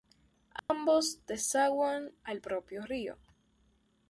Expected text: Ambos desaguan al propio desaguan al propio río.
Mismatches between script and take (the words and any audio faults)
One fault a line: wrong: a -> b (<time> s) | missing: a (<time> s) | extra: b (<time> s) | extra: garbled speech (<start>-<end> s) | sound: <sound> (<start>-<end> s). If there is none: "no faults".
sound: dropout (0.6-0.7 s)
missing: desaguan al propio (2.9 s)